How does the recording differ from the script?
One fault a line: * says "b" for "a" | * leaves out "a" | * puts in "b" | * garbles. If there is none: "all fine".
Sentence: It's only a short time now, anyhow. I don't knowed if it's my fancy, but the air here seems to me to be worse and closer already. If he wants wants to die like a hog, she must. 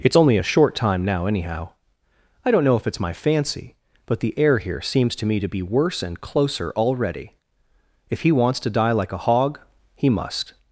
* says "know" for "knowed"
* leaves out "wants"
* says "he" for "she"